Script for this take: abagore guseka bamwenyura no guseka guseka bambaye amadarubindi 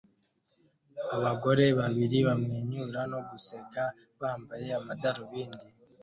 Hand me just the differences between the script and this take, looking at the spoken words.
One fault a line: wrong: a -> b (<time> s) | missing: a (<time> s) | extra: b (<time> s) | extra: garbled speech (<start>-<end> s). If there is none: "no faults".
wrong: guseka -> babiri (1.8 s)
missing: guseka (3.8 s)